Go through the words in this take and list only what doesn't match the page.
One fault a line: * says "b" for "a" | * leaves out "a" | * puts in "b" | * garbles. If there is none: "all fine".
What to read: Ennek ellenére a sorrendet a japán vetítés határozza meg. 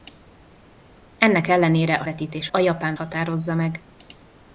* says "vetítés" for "sorrendet"
* leaves out "vetítés"